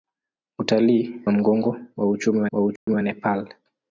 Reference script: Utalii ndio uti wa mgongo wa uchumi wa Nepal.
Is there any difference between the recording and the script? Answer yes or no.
yes